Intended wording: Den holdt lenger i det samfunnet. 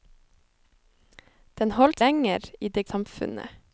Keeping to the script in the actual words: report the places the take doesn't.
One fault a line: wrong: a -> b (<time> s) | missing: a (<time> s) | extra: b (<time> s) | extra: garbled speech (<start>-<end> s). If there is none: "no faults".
no faults